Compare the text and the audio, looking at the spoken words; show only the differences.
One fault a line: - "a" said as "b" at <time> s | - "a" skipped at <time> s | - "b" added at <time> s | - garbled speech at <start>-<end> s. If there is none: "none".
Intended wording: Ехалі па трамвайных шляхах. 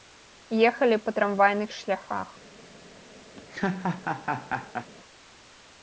none